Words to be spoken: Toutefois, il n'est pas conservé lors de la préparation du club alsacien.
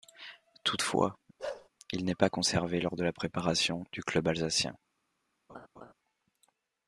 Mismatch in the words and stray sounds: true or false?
true